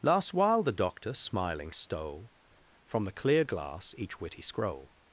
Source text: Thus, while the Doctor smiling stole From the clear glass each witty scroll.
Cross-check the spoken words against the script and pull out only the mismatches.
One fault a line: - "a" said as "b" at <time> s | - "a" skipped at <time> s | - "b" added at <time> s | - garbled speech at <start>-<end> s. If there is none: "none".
- "Thus" said as "Last" at 0.0 s